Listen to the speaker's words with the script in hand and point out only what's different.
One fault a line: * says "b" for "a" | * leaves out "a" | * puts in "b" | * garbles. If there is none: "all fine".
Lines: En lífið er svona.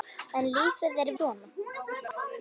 all fine